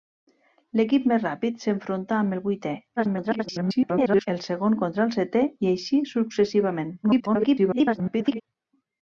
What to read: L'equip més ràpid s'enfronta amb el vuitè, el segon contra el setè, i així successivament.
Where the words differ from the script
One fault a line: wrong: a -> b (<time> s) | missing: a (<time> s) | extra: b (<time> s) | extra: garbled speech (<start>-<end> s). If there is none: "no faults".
extra: garbled speech (3.0-4.3 s)
extra: garbled speech (7.0-8.4 s)